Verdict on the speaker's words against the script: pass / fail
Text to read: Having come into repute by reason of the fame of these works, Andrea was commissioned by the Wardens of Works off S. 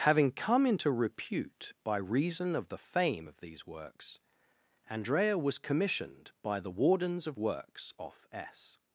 pass